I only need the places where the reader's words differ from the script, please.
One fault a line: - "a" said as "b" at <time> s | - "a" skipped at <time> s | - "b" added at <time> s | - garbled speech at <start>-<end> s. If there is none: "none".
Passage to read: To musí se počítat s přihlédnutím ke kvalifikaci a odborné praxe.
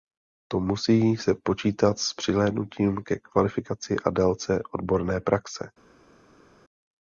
- "délce" added at 4.1 s